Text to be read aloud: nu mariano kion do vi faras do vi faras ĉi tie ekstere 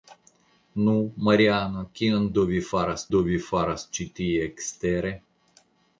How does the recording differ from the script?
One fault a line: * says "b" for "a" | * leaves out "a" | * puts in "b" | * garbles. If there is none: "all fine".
all fine